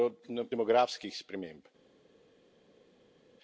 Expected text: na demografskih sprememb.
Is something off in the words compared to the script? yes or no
no